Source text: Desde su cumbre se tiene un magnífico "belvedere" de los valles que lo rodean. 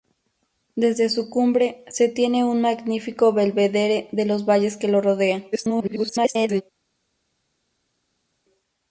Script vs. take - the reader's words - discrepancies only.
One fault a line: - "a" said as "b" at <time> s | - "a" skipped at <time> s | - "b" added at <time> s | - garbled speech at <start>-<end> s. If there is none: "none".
- garbled speech at 5.5-6.6 s